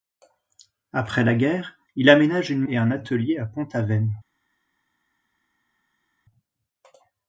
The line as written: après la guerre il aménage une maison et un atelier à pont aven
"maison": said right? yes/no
no